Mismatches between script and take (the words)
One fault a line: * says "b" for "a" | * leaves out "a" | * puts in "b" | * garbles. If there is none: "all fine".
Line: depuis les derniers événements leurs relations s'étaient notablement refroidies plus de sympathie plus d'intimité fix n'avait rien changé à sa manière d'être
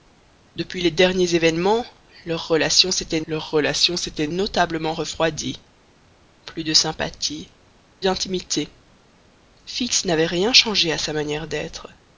* puts in "leurs relations s'étaient"
* leaves out "plus"